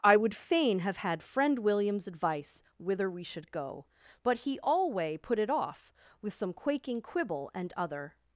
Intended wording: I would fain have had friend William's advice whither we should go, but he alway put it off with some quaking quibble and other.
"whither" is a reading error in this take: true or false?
false